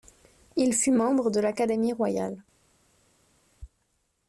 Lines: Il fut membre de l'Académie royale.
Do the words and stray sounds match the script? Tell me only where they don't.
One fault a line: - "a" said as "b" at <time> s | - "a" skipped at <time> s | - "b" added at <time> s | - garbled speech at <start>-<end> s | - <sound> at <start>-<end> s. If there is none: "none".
none